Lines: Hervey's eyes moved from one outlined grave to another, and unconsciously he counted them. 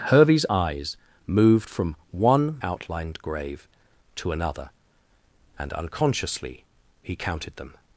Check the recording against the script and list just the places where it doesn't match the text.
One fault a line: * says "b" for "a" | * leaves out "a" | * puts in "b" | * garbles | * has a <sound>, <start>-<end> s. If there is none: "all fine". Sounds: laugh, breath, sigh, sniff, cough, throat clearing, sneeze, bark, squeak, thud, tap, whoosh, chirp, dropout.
all fine